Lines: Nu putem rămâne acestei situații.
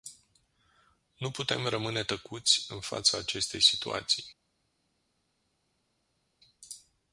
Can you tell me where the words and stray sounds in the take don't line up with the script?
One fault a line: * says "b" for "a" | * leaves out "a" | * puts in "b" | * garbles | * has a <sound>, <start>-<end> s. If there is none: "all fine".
* puts in "tăcuți în fața"